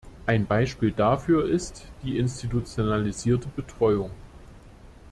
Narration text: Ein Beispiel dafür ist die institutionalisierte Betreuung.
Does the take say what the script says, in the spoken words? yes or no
yes